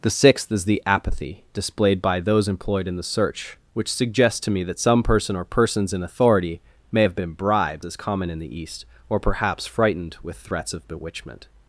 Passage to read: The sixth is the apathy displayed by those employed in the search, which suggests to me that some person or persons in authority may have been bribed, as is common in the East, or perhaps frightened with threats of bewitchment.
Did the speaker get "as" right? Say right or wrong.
wrong